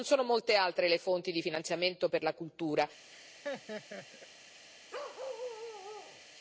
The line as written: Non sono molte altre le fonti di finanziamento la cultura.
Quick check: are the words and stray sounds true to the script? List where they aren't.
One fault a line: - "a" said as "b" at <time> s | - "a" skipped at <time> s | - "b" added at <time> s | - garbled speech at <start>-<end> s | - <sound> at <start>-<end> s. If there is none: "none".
- "per" added at 2.0 s
- laugh at 3.1-4.3 s
- bark at 4.9-6.2 s